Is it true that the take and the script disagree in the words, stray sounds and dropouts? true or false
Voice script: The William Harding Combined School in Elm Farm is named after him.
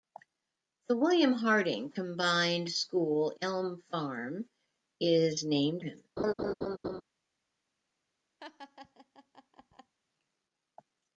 true